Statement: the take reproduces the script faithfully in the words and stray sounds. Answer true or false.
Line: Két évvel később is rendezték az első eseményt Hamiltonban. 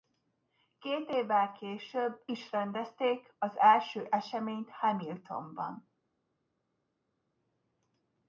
true